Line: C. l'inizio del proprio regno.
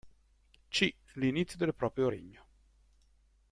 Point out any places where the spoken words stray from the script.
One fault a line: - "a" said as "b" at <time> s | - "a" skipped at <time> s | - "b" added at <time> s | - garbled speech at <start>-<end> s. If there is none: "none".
none